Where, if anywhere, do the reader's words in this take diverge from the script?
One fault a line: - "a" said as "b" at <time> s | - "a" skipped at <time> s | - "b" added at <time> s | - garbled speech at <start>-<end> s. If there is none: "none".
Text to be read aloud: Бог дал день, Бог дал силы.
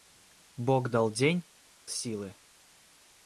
- "Бог дал" skipped at 1.5 s